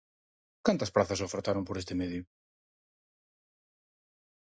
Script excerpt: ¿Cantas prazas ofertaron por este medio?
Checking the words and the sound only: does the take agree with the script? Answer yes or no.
yes